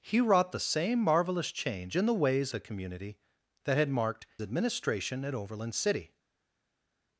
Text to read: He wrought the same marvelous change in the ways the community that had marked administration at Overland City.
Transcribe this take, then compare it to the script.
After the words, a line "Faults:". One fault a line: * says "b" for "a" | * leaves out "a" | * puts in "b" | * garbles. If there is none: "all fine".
He wrought the same marvelous change in the ways the community that had marked administration at Overland City.
Faults:
all fine